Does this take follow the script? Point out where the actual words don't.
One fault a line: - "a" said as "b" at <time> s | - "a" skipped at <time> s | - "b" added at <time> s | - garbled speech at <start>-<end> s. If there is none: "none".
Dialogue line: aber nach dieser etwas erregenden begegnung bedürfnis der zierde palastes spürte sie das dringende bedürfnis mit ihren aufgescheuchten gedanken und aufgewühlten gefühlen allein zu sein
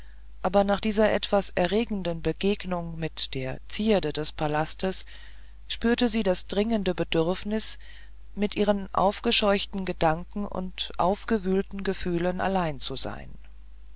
- "bedürfnis" said as "mit" at 3.0 s
- "des" added at 4.1 s